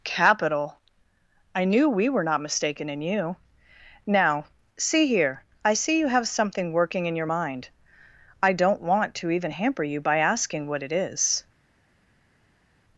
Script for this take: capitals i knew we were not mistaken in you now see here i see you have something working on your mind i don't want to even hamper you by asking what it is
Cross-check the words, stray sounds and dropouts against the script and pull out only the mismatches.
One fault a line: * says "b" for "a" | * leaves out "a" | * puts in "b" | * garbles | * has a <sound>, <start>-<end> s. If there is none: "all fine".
* says "capital" for "capitals"
* says "in" for "on"